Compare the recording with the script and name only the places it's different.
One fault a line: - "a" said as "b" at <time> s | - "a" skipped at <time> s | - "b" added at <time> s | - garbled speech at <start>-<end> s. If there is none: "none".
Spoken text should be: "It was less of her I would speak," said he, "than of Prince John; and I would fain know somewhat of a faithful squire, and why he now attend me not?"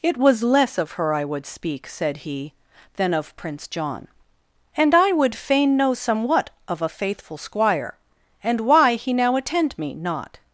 none